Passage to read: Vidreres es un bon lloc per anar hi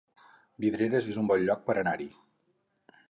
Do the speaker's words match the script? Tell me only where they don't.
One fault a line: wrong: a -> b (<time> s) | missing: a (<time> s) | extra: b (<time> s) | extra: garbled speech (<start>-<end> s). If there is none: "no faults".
no faults